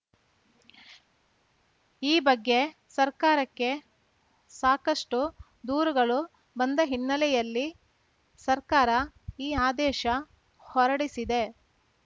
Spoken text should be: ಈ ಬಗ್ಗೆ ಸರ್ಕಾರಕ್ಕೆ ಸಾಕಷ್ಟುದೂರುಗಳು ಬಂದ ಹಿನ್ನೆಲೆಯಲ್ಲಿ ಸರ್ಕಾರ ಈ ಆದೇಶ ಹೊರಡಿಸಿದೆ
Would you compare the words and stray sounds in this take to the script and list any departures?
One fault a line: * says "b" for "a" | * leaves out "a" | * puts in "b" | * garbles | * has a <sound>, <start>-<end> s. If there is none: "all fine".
all fine